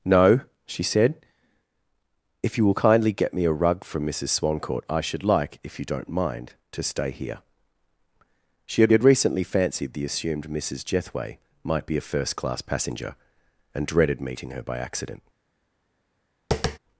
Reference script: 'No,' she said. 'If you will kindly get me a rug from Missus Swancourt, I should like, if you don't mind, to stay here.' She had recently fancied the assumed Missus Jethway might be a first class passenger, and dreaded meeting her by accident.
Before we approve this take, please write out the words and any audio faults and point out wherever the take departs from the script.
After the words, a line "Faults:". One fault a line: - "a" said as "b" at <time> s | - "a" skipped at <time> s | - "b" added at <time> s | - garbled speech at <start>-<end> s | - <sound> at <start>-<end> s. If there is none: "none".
'No,' she said. 'If you will kindly get me a rug from Missus Swancourt, I should like, if you don't mind, to stay here.' She had had recently fancied the assumed Missus Jethway might be a first class passenger, and dreaded meeting her by accident.
Faults:
- "had" added at 8.9 s
- tap at 16.5-16.8 s